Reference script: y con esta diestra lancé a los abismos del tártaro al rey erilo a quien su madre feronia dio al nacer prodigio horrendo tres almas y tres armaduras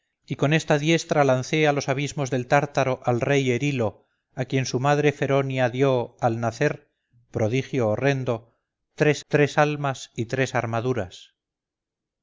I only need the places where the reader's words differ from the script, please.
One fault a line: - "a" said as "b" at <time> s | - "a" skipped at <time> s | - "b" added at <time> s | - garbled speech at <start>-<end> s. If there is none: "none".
- "tres" added at 9.3 s